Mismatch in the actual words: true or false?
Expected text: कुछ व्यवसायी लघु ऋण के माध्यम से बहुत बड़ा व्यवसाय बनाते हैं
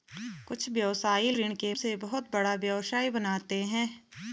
true